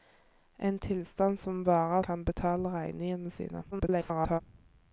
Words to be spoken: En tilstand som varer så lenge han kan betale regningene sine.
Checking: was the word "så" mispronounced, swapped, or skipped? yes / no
yes